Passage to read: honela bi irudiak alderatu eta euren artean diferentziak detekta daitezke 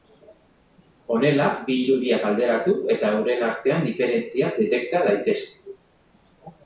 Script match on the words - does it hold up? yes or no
yes